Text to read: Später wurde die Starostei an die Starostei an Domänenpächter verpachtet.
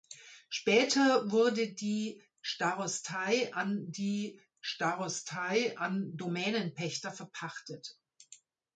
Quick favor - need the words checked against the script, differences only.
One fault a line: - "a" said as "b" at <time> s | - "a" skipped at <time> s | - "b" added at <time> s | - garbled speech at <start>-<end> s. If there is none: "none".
none